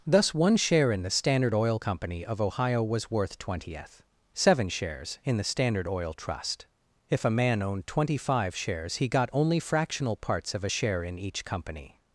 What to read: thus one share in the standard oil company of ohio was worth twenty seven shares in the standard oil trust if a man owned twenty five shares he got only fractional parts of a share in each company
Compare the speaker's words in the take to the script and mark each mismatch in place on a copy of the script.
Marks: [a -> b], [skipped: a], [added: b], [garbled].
thus one share in the standard oil company of ohio was worth [twenty -> twentieth] seven shares in the standard oil trust if a man owned twenty five shares he got only fractional parts of a share in each company